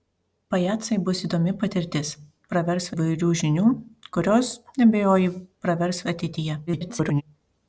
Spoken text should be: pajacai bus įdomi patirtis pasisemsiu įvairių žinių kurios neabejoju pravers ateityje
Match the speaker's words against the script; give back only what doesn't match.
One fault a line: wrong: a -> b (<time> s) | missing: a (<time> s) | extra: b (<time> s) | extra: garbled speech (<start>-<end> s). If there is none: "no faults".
wrong: pasisemsiu -> pravers (2.5 s)
extra: garbled speech (6.7-7.2 s)